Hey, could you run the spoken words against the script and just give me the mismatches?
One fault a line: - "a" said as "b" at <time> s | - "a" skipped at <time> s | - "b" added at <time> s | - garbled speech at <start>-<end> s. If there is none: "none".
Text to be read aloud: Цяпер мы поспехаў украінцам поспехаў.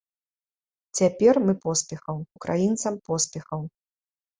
none